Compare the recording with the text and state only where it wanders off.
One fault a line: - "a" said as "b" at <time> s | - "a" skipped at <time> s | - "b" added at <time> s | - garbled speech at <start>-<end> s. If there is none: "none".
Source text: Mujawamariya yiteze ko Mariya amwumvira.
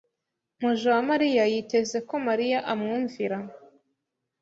none